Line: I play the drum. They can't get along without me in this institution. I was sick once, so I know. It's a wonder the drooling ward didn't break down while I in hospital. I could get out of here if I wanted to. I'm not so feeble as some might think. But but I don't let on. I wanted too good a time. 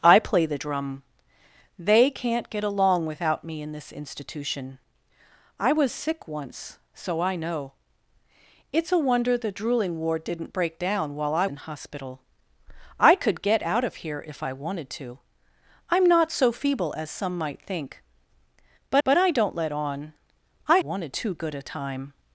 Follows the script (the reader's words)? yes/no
yes